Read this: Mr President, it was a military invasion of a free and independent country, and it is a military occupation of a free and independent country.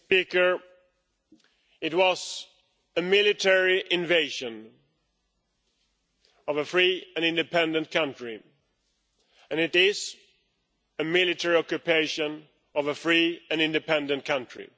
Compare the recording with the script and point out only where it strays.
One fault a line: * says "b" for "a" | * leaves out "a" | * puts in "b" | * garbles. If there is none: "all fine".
all fine